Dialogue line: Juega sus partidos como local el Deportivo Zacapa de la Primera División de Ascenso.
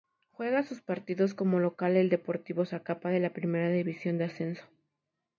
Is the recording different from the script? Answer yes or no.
no